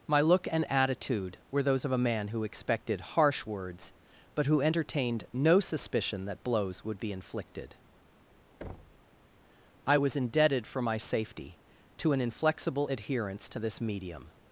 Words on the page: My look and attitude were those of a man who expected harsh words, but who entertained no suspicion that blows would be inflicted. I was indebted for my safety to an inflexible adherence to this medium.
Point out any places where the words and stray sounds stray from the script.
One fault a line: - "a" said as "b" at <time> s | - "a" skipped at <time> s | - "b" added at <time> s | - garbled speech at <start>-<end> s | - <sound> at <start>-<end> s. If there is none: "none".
- thud at 8.6-9.1 s